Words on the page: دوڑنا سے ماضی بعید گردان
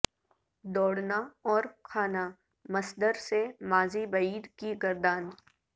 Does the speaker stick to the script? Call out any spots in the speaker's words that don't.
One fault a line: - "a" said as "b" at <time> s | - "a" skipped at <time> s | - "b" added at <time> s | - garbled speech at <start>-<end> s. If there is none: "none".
- "اور کھانا مصدر" added at 1.5 s
- "کی" added at 4.6 s